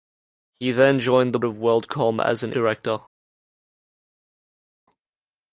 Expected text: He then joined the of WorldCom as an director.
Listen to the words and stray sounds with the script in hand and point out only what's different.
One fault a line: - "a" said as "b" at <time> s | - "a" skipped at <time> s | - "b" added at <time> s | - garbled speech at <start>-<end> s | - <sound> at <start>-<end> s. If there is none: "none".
none